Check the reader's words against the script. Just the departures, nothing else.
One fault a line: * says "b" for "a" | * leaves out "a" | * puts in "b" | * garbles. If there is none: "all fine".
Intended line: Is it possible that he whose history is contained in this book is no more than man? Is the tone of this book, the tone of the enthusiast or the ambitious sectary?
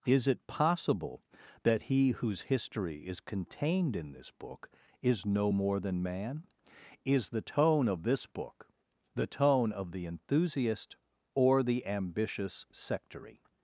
all fine